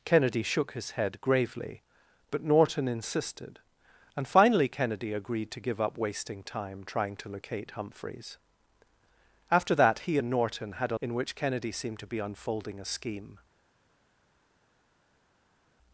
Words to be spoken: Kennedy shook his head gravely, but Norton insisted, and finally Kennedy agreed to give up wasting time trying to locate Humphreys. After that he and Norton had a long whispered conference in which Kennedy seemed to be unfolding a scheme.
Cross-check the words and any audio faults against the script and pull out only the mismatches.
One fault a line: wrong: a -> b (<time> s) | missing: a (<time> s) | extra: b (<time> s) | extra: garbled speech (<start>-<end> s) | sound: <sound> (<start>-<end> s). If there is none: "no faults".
missing: long whispered conference (11.0 s)